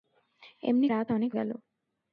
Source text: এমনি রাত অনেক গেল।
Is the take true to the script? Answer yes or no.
yes